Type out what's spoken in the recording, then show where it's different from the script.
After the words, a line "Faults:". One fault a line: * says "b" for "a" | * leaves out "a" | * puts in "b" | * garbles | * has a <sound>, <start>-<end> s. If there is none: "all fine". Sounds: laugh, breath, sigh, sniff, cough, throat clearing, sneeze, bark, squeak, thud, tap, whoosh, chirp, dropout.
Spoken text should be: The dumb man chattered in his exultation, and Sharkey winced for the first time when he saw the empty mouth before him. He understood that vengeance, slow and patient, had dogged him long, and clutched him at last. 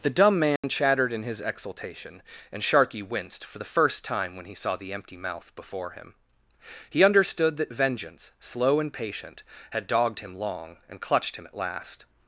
The dumb man chattered in his exultation, and Sharkey winced for the first time when he saw the empty mouth before him. He understood that vengeance, slow and patient, had dogged him long, and clutched him at last.
Faults:
* has a dropout, 0.6-0.6 s